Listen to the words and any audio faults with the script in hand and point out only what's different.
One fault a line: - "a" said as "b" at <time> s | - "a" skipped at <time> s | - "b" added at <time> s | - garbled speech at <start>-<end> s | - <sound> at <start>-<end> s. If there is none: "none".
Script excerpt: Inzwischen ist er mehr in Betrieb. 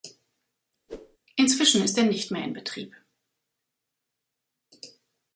- whoosh at 0.9-1.2 s
- "nicht" added at 2.0 s